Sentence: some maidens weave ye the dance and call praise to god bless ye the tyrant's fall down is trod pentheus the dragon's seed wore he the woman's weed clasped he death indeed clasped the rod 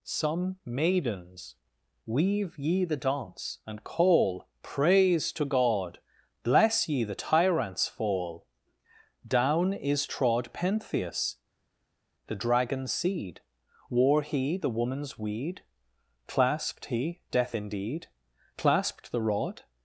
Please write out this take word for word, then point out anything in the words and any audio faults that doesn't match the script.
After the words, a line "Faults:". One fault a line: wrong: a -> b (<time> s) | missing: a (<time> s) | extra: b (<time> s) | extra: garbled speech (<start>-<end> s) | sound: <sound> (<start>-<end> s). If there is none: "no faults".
some maidens weave ye the dance and call praise to god bless ye the tyrant's fall down is trod pentheus the dragon's seed wore he the woman's weed clasped he death indeed clasped the rod
Faults:
no faults